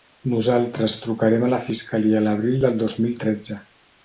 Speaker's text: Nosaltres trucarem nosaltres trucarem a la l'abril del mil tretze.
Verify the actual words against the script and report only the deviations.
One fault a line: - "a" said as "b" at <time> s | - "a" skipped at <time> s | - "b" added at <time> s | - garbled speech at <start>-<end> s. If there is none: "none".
- "nosaltres trucarem" skipped at 1.4 s
- "fiscalia" added at 1.7 s
- "dos" added at 2.9 s